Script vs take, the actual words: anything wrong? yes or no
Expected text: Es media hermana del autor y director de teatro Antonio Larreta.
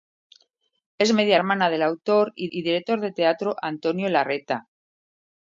yes